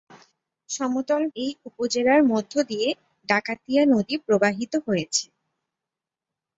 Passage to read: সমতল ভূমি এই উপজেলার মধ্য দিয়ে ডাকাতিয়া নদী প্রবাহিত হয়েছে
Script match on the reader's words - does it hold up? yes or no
no